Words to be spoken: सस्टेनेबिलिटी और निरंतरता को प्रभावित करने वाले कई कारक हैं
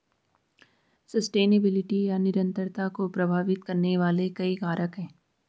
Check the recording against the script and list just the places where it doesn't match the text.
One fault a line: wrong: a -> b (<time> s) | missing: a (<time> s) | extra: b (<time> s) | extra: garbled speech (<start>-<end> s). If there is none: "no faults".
wrong: और -> या (2.0 s)